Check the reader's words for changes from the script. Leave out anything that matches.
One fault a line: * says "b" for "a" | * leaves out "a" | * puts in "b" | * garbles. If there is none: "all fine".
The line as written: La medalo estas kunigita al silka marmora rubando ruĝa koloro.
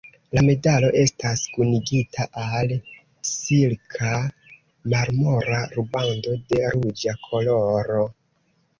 * puts in "de"